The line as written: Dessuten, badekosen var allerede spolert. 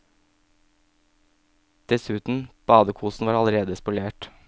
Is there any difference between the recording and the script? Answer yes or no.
no